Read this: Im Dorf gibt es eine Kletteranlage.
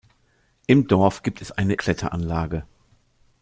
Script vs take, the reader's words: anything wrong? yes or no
no